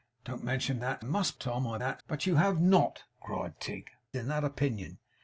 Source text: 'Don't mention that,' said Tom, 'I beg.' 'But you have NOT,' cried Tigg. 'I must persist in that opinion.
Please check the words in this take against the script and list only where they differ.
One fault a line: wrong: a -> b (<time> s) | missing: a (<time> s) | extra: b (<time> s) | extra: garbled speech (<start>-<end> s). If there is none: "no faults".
wrong: said -> must (1.0 s)
wrong: beg -> that (1.8 s)
missing: I must persist (3.9 s)